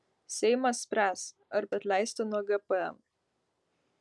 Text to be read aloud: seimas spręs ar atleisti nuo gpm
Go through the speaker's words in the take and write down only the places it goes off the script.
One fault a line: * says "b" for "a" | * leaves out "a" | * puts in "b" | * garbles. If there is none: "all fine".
all fine